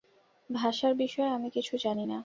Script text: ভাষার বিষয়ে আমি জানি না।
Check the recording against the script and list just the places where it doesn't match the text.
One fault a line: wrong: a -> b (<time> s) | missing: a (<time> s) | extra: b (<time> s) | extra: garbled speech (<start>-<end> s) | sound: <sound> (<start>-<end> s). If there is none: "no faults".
extra: কিছু (1.5 s)